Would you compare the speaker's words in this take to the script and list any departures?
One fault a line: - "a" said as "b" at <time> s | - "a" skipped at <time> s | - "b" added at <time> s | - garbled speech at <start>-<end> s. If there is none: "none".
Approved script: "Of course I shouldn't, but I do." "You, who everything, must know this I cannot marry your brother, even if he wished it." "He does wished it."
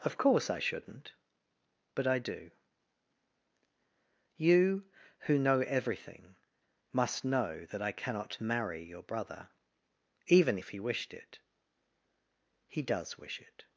- "know" added at 5.4 s
- "this" said as "that" at 7.7 s
- "wished" said as "wish" at 13.2 s